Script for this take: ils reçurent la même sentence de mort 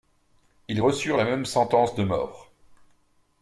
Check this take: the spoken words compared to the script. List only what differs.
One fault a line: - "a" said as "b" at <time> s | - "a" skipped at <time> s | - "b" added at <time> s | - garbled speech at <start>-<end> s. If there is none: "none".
none